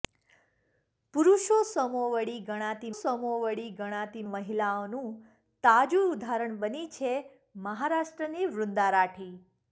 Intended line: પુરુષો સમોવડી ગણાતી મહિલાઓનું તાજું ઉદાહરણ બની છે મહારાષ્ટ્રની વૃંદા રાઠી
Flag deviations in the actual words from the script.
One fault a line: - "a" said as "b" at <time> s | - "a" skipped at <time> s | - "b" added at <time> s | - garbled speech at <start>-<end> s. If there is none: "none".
- "સમોવડી ગણાતી" added at 3.0 s